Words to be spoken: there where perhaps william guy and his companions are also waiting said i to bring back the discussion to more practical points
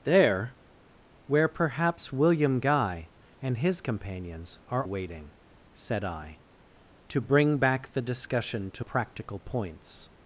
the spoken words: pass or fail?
fail